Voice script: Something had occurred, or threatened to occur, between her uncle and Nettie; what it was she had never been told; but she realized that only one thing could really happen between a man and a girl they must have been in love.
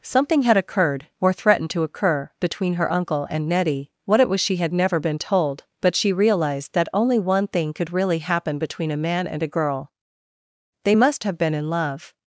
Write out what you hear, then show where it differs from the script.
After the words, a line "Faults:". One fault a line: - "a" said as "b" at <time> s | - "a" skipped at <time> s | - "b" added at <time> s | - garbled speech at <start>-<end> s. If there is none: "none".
Something had occurred, or threatened to occur, between her uncle and Nettie; what it was she had never been told; but she realized that only one thing could really happen between a man and a girl they must have been in love.
Faults:
none